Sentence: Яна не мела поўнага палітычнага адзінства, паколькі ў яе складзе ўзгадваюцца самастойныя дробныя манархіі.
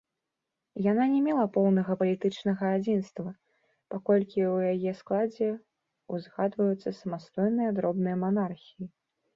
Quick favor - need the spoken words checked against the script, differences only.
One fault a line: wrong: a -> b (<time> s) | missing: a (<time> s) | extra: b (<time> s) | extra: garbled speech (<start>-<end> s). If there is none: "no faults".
no faults